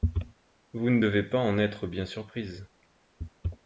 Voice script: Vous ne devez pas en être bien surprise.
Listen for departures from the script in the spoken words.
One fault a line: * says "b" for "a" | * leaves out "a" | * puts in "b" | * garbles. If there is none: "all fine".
all fine